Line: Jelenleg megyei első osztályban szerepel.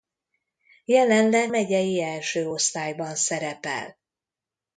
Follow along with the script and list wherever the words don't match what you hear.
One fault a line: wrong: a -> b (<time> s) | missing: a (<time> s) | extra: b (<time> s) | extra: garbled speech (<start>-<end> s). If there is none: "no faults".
no faults